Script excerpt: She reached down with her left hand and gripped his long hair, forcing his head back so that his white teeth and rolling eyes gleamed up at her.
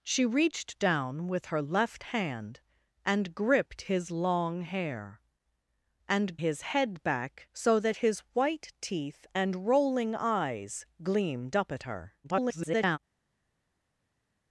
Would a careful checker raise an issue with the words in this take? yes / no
yes